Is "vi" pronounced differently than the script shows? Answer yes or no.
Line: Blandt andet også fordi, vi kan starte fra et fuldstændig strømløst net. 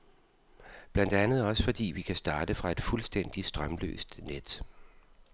no